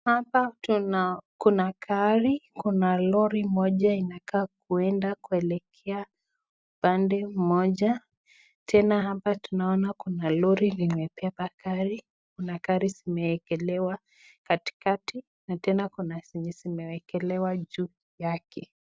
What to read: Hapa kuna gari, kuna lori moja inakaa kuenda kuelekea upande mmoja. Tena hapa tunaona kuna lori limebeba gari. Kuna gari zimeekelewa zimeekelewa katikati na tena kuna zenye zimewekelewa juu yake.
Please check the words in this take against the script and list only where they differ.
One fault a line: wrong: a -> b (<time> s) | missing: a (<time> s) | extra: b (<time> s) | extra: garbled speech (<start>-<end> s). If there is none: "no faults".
missing: zimeekelewa (14.0 s)